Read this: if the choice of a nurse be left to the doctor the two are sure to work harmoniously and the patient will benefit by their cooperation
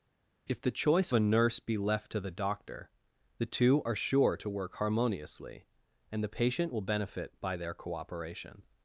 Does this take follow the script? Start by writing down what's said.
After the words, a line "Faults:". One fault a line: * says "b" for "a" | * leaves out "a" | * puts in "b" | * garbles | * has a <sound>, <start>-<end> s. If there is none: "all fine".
if the choice a nurse be left to the doctor the two are sure to work harmoniously and the patient will benefit by their cooperation
Faults:
* leaves out "of"